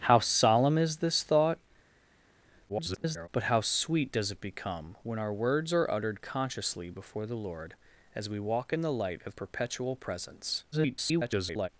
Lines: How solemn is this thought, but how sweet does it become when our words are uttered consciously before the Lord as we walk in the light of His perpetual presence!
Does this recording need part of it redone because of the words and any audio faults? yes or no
yes